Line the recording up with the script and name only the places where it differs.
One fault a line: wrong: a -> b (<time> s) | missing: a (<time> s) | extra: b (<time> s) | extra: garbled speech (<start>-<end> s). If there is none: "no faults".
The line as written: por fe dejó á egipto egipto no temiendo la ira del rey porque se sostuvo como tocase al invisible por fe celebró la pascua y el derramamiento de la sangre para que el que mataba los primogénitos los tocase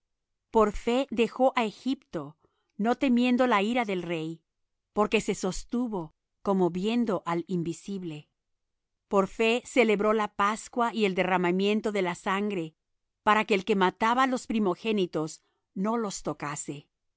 missing: egipto (2.4 s)
wrong: tocase -> viendo (6.7 s)
extra: no (15.7 s)